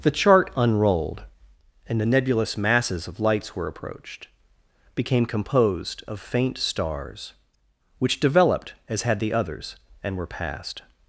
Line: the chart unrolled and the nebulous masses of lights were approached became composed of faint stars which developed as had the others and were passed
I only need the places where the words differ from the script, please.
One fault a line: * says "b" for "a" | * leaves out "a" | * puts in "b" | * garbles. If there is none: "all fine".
all fine